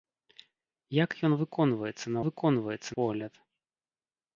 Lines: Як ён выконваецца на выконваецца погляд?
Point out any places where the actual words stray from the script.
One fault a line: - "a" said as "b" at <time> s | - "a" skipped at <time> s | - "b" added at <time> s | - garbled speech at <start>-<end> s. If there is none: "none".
none